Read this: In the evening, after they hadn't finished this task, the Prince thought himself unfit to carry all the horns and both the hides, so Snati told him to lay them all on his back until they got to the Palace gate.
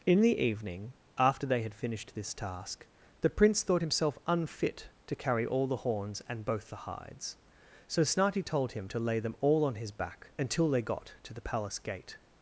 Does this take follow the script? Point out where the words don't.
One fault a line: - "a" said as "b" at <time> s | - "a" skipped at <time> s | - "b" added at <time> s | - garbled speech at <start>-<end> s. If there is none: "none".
- "hadn't" said as "had" at 1.6 s